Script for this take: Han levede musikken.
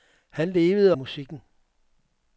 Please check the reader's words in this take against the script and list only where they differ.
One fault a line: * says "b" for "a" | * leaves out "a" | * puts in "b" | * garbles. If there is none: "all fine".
all fine